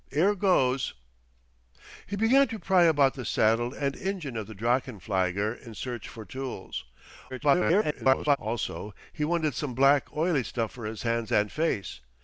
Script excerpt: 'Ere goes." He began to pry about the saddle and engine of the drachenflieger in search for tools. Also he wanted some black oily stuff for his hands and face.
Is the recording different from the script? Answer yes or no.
yes